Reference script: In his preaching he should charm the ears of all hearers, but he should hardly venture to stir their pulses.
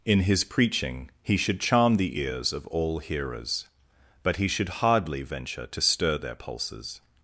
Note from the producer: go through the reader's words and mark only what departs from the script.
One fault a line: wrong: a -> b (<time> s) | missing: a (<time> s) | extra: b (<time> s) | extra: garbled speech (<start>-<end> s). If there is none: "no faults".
no faults